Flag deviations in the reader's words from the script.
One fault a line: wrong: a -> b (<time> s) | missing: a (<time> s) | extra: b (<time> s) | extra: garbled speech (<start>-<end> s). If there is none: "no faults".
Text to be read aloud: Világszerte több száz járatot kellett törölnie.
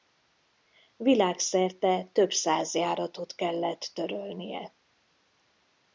no faults